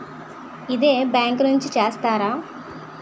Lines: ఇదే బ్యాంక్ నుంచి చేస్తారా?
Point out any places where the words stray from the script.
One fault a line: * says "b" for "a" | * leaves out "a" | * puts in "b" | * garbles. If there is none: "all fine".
all fine